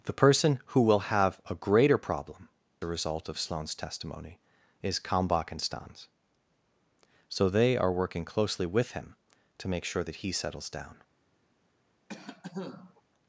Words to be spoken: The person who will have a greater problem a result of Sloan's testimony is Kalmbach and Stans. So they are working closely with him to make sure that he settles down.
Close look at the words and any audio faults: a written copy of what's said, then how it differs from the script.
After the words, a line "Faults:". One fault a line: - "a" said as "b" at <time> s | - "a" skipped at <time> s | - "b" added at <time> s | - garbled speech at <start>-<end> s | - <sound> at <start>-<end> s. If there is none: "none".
The person who will have a greater problem a result of Sloan's testimony is Kalmbach and Stans. So they are working closely with him to make sure that he settles down.
Faults:
- cough at 12.1-13.0 s